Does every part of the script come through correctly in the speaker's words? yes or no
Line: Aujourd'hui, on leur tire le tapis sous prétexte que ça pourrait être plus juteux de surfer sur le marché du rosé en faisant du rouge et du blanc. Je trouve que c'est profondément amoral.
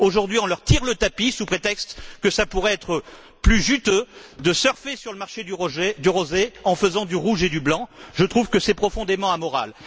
yes